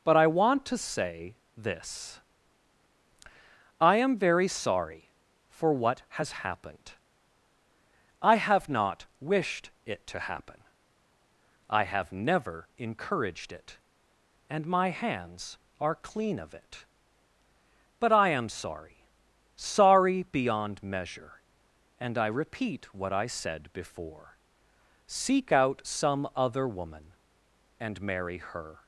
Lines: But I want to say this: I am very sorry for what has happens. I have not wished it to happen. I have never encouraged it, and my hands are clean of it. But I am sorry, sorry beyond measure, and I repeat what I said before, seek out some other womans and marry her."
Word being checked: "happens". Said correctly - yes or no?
no